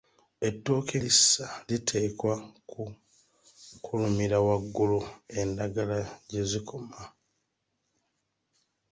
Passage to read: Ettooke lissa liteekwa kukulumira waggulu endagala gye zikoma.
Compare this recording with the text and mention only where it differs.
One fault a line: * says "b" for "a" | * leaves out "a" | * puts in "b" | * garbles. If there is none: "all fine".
all fine